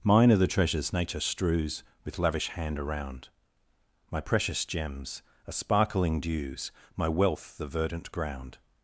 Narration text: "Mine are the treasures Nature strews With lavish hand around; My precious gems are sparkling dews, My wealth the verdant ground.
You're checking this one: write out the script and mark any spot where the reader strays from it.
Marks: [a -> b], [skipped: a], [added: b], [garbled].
"Mine are the treasures Nature strews With lavish hand around; My precious gems are sparkling dews, My wealth the verdant ground.